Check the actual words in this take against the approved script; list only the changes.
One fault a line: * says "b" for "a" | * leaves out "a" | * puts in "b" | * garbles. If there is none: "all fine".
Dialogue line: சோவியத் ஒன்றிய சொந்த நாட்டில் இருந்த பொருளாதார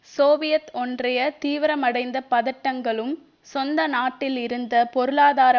* puts in "தீவிரமடைந்த பதட்டங்களும்"